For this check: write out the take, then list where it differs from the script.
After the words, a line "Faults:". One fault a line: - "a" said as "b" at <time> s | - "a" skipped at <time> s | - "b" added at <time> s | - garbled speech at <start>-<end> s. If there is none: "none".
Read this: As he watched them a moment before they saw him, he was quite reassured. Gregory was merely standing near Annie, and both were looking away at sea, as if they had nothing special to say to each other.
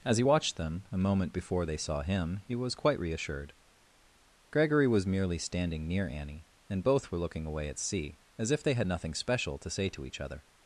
As he watched them a moment before they saw him, he was quite reassured. Gregory was merely standing near Annie, and both were looking away at sea, as if they had nothing special to say to each other.
Faults:
none